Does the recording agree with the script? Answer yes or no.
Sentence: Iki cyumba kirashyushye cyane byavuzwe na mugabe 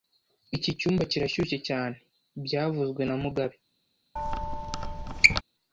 yes